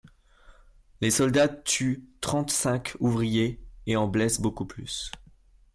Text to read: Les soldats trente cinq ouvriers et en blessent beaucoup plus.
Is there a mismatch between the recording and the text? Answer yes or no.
yes